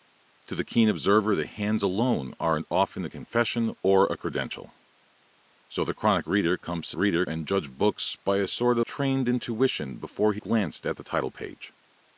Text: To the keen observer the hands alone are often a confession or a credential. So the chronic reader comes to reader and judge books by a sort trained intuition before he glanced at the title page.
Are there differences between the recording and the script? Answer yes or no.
no